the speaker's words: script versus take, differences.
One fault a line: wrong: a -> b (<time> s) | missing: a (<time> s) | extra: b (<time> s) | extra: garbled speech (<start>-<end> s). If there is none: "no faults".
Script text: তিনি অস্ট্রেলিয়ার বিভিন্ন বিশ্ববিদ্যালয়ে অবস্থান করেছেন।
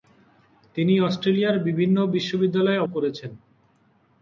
missing: অবস্থান (2.8 s)